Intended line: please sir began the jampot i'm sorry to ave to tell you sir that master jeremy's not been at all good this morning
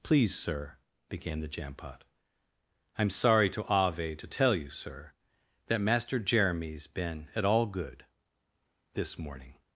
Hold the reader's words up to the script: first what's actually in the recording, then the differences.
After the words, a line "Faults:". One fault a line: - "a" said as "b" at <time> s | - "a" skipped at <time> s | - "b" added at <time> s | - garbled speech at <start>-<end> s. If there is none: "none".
please sir began the jampot i'm sorry to ave to tell you sir that master jeremy's been at all good this morning
Faults:
- "not" skipped at 6.9 s